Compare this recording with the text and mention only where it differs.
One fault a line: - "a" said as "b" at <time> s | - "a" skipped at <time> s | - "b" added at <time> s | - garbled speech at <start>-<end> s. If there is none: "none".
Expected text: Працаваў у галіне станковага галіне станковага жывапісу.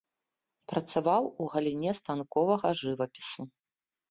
- "галіне станковага" skipped at 2.7 s